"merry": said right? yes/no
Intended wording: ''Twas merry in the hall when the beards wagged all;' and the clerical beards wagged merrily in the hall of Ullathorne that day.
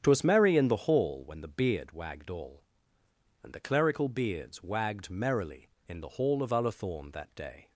yes